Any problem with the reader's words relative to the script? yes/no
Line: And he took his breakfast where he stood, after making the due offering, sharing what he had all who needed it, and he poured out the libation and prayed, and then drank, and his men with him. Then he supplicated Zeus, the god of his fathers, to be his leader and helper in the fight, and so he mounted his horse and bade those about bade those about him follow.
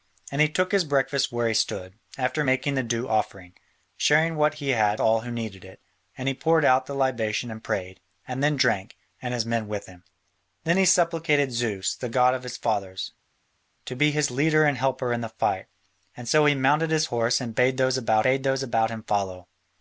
no